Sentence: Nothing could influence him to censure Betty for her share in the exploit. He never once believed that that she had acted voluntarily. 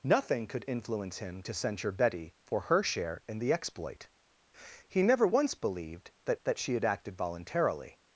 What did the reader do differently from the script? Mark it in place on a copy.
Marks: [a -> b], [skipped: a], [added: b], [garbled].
Nothing could influence him to censure Betty for her share in the exploit. He never once believed that that she had acted voluntarily.